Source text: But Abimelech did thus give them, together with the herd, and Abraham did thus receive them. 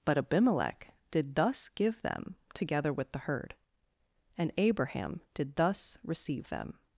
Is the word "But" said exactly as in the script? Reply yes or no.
yes